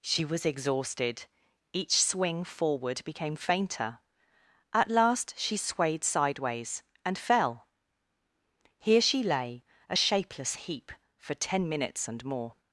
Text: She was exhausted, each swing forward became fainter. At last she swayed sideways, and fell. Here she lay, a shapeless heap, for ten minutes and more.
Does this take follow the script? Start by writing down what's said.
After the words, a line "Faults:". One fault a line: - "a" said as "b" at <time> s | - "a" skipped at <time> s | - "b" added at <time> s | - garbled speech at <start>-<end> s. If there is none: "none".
She was exhausted, each swing forward became fainter. At last she swayed sideways, and fell. Here she lay, a shapeless heap, for ten minutes and more.
Faults:
none